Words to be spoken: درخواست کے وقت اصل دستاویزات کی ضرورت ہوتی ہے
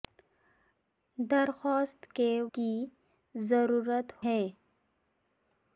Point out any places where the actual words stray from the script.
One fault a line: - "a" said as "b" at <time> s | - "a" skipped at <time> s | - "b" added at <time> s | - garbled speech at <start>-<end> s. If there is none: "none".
- "وقت اصل دستاویزات" skipped at 2.3 s
- "ہوتی" skipped at 4.1 s